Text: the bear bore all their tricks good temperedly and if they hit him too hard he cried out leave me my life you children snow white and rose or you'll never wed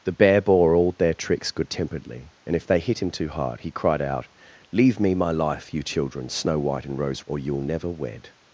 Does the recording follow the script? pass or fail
pass